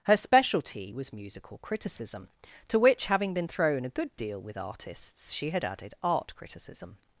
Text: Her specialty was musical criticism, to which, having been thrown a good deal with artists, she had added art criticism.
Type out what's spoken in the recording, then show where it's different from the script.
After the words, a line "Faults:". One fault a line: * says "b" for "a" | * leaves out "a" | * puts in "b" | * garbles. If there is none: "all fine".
Her specialty was musical criticism, to which, having been thrown a good deal with artists, she had added art criticism.
Faults:
all fine